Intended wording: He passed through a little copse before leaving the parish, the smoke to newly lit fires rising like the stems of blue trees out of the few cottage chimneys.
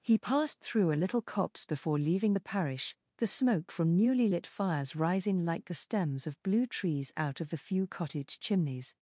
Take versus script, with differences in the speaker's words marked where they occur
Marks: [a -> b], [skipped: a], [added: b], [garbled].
He passed through a little copse before leaving the parish, the smoke [to -> from] newly lit fires rising like the stems of blue trees out of the few cottage chimneys.